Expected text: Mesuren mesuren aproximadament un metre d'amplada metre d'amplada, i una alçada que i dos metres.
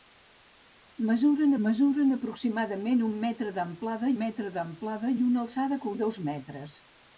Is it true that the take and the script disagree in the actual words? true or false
false